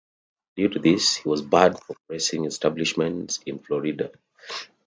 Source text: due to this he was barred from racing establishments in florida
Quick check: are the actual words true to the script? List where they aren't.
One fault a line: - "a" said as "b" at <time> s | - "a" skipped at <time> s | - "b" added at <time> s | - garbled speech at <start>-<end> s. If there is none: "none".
none